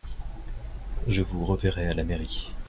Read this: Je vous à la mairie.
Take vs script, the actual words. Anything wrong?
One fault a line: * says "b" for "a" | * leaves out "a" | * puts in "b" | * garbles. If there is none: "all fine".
* puts in "reverrai"